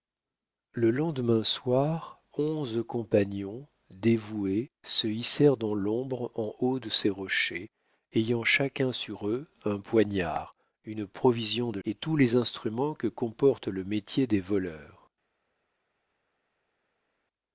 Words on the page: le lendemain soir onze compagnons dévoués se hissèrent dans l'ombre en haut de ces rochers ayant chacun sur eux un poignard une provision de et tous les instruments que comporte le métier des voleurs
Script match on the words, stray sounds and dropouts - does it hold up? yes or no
yes